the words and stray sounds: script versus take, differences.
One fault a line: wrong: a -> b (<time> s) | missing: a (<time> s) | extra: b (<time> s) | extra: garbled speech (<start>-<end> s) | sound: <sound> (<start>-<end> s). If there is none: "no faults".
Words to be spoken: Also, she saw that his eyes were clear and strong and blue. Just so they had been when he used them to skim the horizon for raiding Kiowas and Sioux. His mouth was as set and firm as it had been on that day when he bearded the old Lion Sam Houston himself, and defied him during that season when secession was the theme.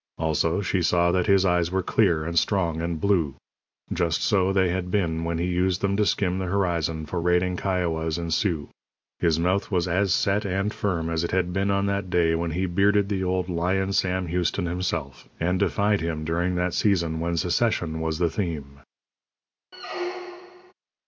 sound: squeak (19.7-20.7 s)